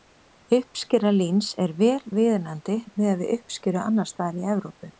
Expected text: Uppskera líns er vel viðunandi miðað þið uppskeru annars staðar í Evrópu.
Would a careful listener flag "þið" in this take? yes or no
yes